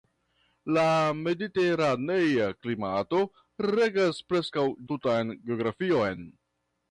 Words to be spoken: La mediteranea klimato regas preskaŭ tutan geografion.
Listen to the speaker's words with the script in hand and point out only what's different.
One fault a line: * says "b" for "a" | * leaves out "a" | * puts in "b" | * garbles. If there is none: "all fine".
all fine